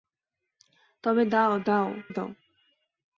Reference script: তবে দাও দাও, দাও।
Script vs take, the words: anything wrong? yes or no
no